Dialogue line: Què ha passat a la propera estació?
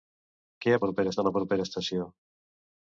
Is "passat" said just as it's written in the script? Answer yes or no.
no